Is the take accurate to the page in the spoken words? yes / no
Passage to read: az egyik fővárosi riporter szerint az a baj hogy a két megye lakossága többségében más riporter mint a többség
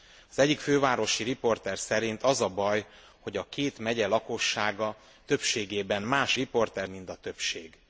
yes